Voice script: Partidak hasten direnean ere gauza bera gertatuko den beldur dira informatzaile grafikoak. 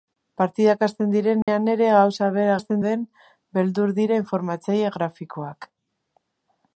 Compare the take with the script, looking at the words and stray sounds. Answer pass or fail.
fail